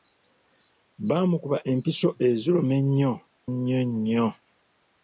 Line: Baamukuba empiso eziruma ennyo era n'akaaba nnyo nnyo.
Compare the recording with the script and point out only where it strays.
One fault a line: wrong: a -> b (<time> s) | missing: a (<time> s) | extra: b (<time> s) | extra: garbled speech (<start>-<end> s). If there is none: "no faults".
missing: era n'akaaba (3.1 s)